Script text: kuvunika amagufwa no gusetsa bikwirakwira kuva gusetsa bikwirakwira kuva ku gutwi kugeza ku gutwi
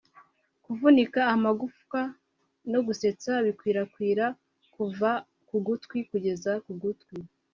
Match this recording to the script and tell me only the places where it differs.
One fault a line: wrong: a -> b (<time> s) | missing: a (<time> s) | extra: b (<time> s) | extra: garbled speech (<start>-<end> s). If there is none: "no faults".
missing: gusetsa bikwirakwira kuva (5.1 s)